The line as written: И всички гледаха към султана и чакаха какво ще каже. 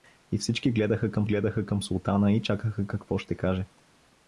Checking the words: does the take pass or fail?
fail